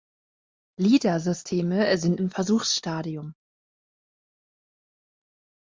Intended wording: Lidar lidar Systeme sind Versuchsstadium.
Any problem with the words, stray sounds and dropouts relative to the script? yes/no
yes